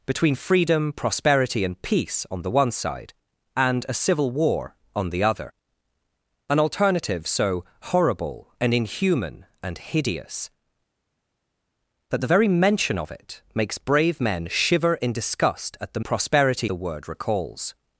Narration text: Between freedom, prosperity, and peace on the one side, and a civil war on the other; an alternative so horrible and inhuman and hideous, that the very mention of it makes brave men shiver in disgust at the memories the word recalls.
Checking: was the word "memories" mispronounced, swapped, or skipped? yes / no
yes